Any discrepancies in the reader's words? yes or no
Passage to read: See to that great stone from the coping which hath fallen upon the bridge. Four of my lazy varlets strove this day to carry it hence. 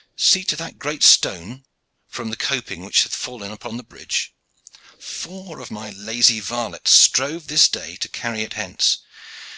no